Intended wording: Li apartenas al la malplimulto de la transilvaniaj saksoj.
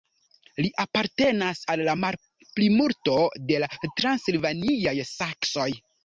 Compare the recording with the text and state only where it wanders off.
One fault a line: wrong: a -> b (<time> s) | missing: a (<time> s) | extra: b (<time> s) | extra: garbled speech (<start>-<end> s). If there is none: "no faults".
no faults